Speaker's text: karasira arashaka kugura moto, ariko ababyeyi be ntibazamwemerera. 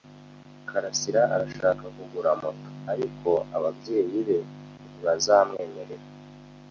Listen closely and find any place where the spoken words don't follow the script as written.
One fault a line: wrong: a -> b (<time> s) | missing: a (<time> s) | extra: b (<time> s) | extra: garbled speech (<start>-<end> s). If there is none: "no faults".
no faults